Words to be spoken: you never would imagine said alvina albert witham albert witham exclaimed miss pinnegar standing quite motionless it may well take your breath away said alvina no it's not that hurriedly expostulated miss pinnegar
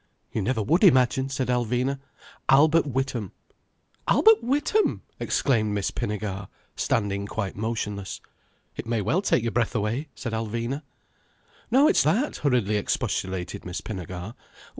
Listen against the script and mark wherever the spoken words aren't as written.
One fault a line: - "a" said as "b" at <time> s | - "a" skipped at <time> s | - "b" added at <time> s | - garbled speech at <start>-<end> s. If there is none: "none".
- "not" skipped at 12.0 s